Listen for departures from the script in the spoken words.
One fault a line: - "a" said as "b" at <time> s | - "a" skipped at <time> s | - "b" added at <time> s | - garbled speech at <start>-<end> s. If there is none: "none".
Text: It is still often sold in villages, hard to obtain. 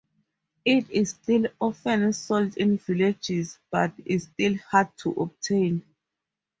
- "but is still" added at 3.7 s